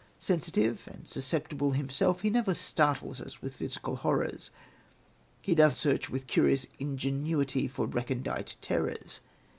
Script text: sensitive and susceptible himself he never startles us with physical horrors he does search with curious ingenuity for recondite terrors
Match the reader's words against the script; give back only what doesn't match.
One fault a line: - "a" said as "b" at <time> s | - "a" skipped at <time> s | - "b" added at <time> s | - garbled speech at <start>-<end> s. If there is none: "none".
none